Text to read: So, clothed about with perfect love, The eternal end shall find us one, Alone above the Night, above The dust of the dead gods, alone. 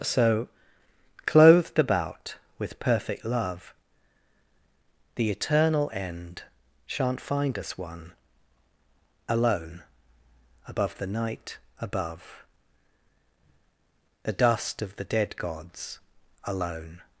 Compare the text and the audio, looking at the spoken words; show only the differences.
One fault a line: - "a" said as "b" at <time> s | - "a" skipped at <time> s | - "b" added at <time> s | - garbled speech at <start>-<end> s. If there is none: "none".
- "shall" said as "shan't" at 6.9 s